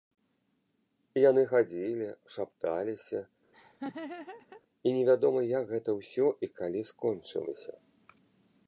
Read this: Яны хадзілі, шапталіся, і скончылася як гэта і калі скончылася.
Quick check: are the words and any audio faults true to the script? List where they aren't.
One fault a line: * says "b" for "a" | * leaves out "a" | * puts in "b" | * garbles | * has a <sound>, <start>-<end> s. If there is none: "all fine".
* has a laugh, 3.5-4.6 s
* says "невядома" for "скончылася"
* puts in "ўсё"